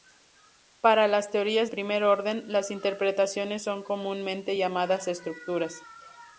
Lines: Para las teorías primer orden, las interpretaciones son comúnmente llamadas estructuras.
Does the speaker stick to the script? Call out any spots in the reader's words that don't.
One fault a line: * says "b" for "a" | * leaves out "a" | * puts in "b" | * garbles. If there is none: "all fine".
all fine